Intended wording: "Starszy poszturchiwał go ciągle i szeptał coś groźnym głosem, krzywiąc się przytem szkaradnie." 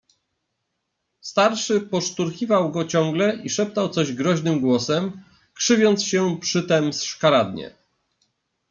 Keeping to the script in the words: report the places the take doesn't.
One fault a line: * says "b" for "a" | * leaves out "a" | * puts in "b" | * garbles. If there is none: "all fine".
all fine